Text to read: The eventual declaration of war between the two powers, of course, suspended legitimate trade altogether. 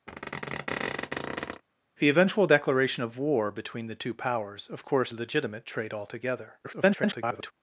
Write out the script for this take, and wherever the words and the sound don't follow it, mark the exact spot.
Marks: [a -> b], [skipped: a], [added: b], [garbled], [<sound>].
[squeak] The eventual declaration of war between the two powers, of course, [skipped: suspended] legitimate trade altogether. [garbled]